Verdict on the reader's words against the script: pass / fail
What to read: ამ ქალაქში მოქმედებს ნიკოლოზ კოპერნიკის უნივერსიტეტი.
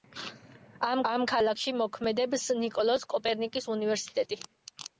fail